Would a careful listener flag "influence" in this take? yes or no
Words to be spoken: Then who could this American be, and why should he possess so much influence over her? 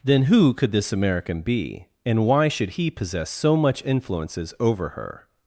yes